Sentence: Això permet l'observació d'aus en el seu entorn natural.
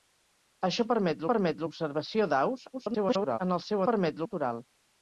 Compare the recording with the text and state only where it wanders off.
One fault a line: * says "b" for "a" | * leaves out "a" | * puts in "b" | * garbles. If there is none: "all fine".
* puts in "permet"
* garbles
* says "permet" for "entorn"